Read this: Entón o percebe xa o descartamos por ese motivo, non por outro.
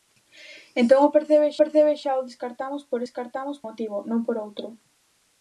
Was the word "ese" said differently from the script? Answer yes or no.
yes